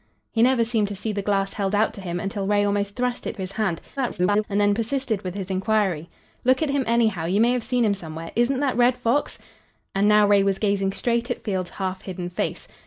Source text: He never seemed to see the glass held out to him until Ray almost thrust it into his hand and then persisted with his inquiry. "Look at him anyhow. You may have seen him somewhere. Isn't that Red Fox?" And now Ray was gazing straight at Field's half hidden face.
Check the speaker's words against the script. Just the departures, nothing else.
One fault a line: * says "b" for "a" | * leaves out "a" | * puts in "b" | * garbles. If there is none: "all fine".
* leaves out "into"
* garbles